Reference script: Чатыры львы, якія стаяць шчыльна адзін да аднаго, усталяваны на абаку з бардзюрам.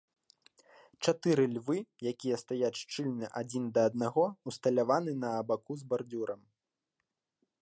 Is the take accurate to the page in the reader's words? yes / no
yes